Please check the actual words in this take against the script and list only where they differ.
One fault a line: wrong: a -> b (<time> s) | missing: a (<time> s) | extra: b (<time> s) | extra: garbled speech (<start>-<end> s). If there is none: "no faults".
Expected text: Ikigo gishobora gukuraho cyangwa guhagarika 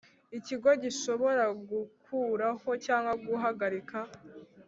no faults